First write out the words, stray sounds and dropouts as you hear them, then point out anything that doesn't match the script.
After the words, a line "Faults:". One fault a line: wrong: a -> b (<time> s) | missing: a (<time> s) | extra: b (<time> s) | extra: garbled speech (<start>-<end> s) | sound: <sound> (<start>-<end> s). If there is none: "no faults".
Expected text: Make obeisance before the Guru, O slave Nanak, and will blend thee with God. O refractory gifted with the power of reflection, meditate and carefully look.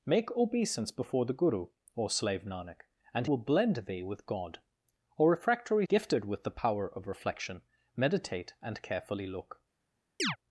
Make obeisance before the Guru, O slave Nanak, and will blend thee with God. O refractory gifted with the power of reflection, meditate and carefully look.
Faults:
sound: chirp (10.2-10.4 s)